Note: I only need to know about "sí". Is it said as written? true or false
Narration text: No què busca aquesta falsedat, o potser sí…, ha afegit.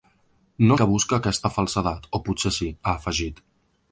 true